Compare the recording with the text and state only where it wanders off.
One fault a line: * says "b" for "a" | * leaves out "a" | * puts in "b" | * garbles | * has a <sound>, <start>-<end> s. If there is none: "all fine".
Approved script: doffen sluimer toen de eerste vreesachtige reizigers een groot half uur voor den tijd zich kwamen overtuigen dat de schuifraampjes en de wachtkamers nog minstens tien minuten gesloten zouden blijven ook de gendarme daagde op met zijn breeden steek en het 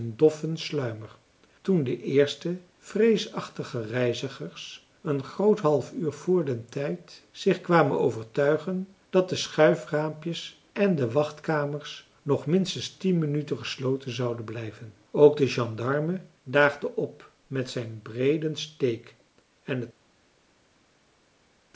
all fine